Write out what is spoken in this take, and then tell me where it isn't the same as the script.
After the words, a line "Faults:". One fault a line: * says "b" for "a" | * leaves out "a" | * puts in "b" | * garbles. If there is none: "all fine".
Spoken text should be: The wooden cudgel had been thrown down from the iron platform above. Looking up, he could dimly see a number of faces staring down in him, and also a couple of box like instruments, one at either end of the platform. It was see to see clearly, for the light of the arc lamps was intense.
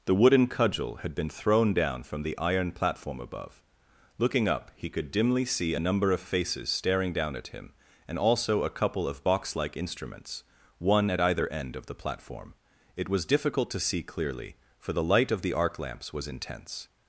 The wooden cudgel had been thrown down from the iron platform above. Looking up, he could dimly see a number of faces staring down at him, and also a couple of box like instruments, one at either end of the platform. It was difficult to see clearly, for the light of the arc lamps was intense.
Faults:
* says "at" for "in"
* says "difficult" for "see"